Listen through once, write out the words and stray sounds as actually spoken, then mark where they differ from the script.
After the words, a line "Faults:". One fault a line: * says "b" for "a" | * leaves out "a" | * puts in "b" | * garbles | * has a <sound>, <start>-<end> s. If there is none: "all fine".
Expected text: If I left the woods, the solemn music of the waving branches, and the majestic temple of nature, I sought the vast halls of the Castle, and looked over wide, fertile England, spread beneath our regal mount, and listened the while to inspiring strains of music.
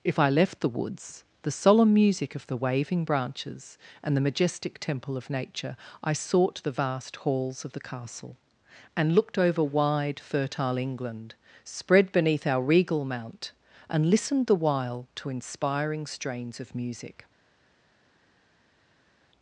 If I left the woods, the solemn music of the waving branches, and the majestic temple of nature, I sought the vast halls of the Castle, and looked over wide, fertile England, spread beneath our regal mount, and listened the while to inspiring strains of music.
Faults:
all fine